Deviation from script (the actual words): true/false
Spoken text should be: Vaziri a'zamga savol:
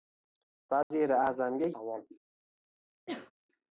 false